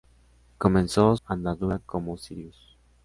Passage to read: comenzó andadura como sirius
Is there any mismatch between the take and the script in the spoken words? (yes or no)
no